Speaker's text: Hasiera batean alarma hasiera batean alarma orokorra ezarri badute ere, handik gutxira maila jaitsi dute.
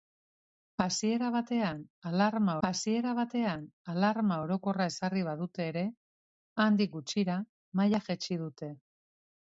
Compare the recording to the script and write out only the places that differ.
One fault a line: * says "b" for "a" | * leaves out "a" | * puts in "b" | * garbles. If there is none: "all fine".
all fine